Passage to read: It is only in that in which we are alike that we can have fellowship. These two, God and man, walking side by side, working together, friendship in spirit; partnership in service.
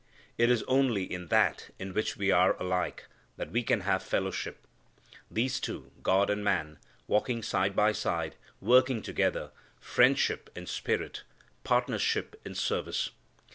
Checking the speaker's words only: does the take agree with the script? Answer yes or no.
yes